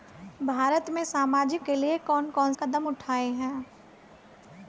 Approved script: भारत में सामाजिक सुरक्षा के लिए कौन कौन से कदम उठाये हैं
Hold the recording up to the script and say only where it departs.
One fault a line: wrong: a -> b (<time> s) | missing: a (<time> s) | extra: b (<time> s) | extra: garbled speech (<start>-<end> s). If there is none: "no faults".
missing: सुरक्षा (1.6 s)
missing: से (2.5 s)